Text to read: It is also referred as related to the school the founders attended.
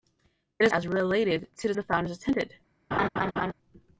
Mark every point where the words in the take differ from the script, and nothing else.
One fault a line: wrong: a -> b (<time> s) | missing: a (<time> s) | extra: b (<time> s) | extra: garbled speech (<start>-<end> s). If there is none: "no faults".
missing: also referred (0.7 s)
missing: school (1.7 s)